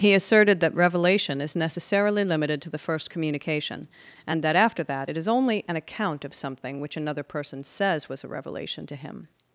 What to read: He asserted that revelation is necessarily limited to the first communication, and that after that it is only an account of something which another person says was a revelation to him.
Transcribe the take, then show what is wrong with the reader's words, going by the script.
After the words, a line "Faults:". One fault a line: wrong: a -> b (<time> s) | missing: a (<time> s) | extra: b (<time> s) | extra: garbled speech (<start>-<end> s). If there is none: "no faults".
He asserted that revelation is necessarily limited to the first communication, and that after that it is only an account of something which another person says was a revelation to him.
Faults:
no faults